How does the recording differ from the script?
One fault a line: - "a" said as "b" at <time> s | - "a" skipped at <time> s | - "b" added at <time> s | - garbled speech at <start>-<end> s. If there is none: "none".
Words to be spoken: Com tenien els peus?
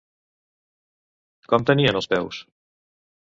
none